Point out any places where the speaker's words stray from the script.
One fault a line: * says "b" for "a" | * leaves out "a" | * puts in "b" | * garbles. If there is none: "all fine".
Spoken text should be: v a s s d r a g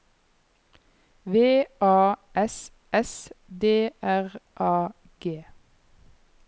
all fine